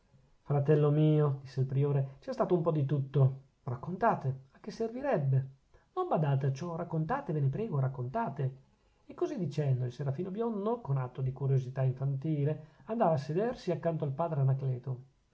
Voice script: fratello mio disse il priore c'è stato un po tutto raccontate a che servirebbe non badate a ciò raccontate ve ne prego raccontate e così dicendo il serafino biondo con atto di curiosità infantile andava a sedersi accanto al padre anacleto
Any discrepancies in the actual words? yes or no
yes